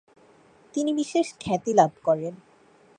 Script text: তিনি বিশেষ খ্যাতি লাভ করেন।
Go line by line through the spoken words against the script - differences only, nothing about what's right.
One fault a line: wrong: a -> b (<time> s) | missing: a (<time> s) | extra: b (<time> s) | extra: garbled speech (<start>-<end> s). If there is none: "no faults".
no faults